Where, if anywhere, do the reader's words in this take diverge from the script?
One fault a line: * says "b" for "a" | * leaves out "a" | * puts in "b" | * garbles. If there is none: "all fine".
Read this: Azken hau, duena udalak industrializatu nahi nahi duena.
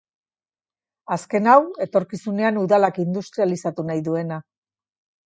* says "etorkizunean" for "duena"
* leaves out "nahi"